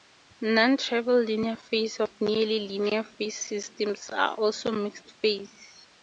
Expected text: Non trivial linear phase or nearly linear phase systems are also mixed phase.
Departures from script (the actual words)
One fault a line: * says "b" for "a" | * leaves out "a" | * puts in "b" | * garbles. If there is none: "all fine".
all fine